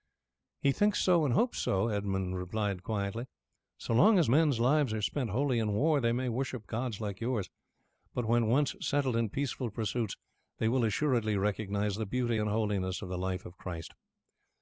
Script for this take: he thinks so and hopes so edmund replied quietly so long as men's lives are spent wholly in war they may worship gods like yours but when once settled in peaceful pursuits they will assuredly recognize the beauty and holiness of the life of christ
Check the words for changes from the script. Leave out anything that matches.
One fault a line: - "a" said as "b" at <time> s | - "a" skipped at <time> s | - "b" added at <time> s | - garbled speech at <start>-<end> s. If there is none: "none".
none